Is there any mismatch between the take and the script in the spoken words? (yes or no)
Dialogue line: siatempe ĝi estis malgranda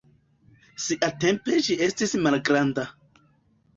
no